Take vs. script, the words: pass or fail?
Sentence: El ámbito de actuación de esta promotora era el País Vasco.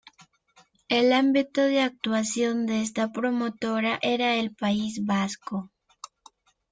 pass